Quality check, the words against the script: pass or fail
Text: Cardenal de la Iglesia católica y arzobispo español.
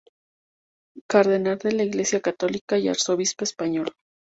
pass